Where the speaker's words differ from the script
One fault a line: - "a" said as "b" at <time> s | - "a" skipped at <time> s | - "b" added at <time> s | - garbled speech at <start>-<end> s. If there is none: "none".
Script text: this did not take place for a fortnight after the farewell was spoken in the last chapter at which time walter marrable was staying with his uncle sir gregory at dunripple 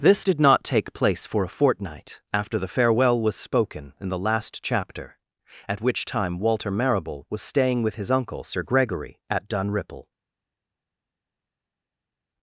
none